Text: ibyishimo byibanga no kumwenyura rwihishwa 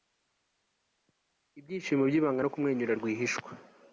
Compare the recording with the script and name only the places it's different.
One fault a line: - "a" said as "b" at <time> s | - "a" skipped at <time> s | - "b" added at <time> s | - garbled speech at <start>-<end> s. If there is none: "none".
none